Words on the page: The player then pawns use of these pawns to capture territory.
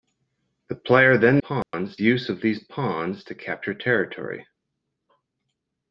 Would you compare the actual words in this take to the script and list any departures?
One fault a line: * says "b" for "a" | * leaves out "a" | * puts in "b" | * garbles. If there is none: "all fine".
all fine